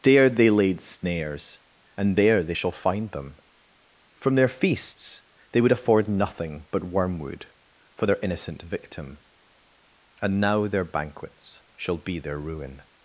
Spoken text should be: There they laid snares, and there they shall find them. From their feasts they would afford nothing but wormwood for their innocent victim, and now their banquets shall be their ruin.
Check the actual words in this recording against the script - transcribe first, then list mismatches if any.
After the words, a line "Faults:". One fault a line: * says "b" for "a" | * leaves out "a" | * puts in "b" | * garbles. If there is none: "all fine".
There they laid snares, and there they shall find them. From their feasts they would afford nothing but wormwood for their innocent victim, and now their banquets shall be their ruin.
Faults:
all fine